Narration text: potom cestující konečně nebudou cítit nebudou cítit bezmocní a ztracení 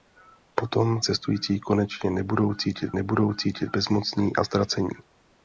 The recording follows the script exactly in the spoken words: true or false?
true